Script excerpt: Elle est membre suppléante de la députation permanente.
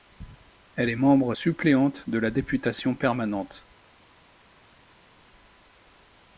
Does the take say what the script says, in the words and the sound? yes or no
yes